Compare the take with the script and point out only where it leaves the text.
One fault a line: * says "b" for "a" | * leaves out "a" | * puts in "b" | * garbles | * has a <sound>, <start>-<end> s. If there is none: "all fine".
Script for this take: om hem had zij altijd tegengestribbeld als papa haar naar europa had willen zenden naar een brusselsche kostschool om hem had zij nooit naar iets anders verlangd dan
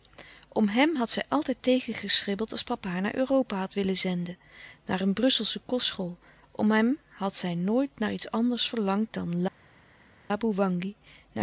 all fine